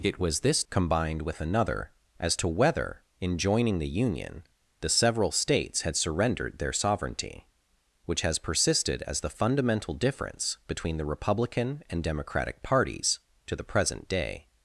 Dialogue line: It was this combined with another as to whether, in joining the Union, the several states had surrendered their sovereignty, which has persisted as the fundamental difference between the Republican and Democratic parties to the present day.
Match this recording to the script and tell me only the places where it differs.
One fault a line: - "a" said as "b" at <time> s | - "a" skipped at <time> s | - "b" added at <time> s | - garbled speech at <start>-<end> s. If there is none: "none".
none